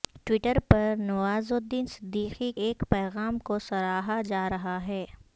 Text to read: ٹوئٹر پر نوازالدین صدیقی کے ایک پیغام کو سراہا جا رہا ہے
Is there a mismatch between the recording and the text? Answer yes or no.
yes